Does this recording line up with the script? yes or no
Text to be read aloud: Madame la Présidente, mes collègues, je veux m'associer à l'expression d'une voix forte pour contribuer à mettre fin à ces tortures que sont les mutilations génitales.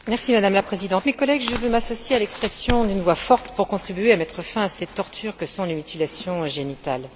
yes